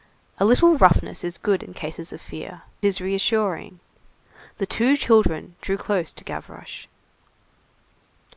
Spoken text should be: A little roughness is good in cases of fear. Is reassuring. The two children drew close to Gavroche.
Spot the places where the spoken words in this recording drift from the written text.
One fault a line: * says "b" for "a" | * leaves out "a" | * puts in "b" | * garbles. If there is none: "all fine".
all fine